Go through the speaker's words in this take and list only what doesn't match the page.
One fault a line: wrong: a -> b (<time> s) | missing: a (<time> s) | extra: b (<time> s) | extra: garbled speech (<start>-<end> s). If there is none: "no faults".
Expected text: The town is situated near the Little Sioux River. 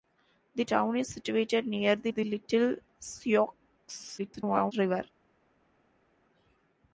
extra: the (2.1 s)
extra: garbled speech (4.2-4.7 s)